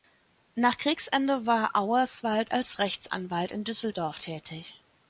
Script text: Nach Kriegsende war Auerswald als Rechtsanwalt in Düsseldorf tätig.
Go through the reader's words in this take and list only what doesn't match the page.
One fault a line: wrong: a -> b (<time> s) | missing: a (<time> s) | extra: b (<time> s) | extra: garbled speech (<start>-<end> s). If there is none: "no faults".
no faults